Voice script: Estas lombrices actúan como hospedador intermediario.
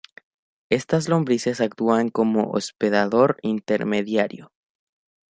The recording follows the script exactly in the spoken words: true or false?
true